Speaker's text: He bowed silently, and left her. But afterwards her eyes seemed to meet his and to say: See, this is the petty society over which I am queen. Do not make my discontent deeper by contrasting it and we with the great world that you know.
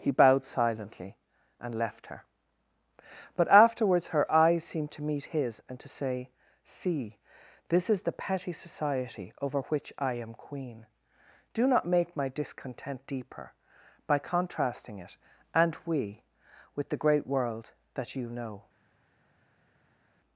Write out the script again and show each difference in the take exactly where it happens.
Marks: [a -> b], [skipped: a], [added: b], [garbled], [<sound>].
He bowed silently, and left her. But afterwards her eyes seemed to meet his and to say: See, this is the petty society over which I am queen. Do not make my discontent deeper by contrasting it and we with the great world that you know.